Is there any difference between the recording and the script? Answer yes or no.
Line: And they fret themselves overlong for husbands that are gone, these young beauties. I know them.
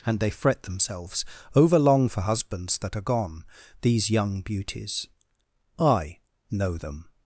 no